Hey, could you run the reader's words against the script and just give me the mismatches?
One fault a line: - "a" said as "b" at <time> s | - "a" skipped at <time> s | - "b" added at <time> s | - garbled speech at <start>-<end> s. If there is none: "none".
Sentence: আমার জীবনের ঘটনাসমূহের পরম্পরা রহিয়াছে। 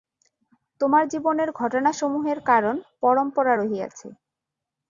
- "আমার" said as "তোমার" at 0.8 s
- "কারণ" added at 2.5 s